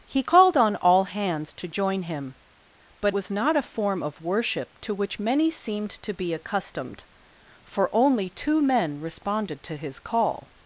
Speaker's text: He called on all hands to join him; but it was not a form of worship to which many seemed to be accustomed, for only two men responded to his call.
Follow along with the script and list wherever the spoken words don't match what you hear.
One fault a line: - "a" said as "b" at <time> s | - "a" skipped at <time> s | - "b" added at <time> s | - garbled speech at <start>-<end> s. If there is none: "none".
- "it" skipped at 3.1 s